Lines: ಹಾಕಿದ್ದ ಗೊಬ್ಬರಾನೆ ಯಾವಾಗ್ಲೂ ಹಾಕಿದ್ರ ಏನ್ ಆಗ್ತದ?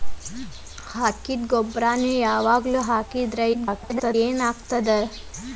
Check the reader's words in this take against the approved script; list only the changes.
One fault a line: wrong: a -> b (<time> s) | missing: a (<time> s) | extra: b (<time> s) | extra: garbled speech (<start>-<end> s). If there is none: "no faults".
extra: garbled speech (3.5-4.2 s)